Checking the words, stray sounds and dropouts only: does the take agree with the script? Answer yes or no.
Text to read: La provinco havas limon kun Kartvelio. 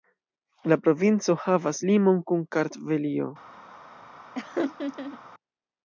no